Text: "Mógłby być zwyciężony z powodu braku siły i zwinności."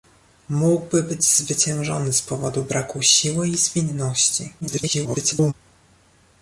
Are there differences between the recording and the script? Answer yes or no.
yes